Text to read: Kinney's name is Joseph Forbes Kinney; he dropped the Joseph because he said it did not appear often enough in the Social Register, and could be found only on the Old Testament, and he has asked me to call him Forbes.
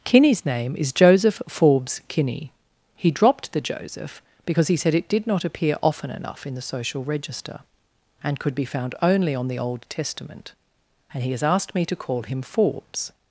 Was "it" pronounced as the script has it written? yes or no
yes